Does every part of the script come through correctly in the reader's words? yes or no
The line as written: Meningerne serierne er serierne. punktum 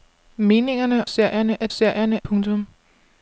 yes